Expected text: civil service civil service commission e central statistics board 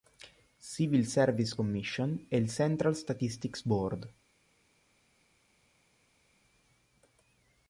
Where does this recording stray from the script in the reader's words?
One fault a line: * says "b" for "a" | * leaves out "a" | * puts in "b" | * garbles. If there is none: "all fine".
* leaves out "civil service"
* puts in "il"